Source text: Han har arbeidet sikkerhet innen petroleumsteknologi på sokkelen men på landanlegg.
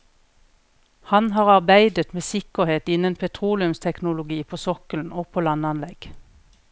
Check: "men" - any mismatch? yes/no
yes